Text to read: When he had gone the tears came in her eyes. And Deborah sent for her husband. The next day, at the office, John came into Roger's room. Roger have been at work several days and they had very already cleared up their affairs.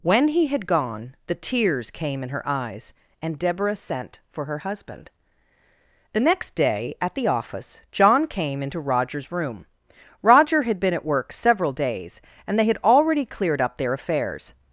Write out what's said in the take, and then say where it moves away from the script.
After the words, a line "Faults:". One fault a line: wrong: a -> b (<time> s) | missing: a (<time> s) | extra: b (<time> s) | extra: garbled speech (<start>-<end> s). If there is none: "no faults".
When he had gone the tears came in her eyes. And Deborah sent for her husband. The next day, at the office, John came into Roger's room. Roger had been at work several days and they had already cleared up their affairs.
Faults:
wrong: have -> had (10.6 s)
missing: very (12.8 s)